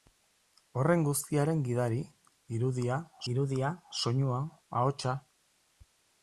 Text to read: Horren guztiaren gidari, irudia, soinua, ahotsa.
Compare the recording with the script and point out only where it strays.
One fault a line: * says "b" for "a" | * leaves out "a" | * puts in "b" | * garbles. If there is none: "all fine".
* puts in "irudia"